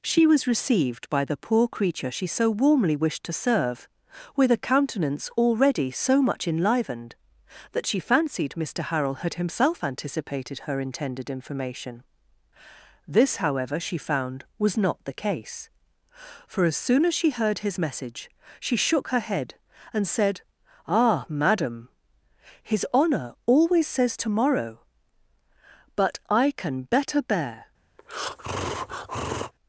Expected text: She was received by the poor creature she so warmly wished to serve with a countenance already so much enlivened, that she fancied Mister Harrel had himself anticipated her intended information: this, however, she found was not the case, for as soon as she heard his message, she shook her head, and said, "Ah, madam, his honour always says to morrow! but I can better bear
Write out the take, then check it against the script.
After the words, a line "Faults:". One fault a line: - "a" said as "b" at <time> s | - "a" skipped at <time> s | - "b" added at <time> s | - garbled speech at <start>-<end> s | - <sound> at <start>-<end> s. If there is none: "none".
She was received by the poor creature she so warmly wished to serve with a countenance already so much enlivened, that she fancied Mister Harrel had himself anticipated her intended information: this, however, she found was not the case, for as soon as she heard his message, she shook her head, and said, "Ah, madam, his honour always says to morrow! but I can better bear
Faults:
- breath at 28.0-29.5 s